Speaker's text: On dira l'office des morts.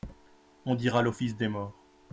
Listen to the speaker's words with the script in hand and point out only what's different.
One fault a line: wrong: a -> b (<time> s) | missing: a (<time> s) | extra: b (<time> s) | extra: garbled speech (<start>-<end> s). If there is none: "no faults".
no faults